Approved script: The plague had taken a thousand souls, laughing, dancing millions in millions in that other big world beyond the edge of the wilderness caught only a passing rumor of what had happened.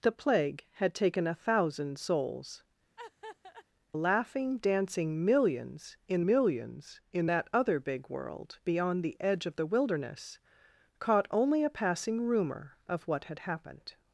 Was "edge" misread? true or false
false